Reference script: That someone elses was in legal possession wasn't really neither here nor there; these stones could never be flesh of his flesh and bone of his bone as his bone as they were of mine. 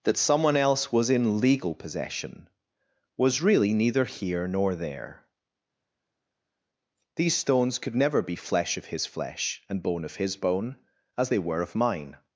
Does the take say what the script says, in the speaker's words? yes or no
no